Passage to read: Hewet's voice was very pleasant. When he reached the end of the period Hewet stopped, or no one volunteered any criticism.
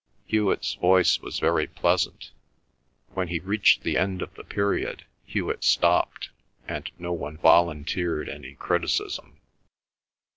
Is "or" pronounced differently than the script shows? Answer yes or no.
yes